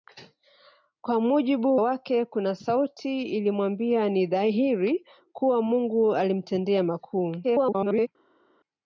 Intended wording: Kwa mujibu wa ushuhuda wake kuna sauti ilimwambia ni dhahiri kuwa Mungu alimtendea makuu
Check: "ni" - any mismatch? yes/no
no